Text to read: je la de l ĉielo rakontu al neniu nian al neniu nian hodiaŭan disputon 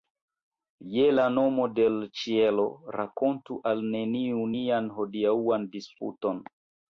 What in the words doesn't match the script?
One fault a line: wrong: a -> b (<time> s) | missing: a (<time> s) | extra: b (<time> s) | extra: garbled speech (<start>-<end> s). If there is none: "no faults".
extra: nomo (1.3 s)
missing: al neniu nian (4.9 s)